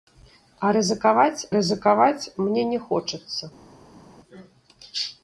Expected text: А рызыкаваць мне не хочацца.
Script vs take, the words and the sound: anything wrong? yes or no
yes